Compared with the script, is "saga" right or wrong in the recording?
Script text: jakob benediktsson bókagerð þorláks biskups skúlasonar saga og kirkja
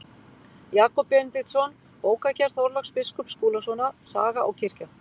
right